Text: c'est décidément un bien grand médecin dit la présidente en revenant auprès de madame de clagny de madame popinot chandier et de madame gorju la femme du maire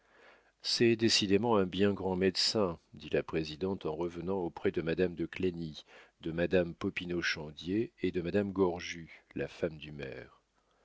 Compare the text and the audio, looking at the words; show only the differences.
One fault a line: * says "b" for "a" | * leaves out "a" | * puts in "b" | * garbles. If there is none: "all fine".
all fine